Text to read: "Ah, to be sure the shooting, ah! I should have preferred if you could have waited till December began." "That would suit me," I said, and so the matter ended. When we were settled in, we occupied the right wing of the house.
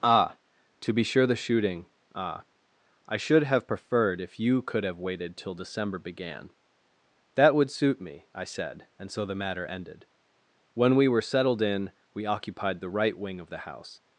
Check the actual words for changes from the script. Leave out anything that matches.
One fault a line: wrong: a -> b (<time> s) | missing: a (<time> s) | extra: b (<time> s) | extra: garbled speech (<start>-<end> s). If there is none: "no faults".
no faults